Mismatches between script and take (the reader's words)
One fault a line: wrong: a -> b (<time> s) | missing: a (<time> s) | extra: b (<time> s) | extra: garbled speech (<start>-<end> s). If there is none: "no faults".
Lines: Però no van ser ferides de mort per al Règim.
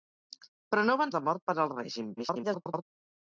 missing: ser ferides (1.1 s)
extra: garbled speech (2.2-2.8 s)